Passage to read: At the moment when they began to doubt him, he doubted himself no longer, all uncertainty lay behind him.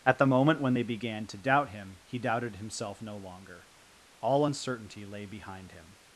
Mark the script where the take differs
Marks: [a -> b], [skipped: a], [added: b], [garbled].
At the moment when they began to doubt him, he doubted himself no longer, all uncertainty lay behind him.